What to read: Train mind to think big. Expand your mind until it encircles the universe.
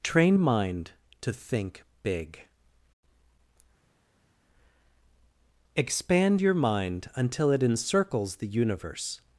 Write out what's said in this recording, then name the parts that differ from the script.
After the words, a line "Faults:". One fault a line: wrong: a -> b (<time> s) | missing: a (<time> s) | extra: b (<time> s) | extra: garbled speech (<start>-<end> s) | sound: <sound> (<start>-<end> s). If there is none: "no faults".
Train mind to think big. Expand your mind until it encircles the universe.
Faults:
no faults